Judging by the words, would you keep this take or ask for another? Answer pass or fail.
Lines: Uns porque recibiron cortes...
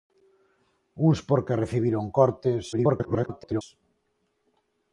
fail